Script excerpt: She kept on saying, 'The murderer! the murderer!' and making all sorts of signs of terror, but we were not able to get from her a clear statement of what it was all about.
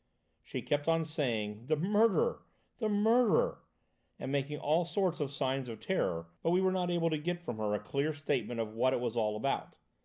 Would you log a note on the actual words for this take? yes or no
no